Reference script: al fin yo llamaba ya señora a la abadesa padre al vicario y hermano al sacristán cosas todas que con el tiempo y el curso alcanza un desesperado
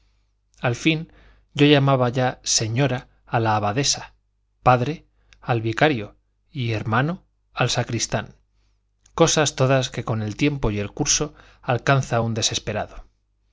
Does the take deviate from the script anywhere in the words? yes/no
no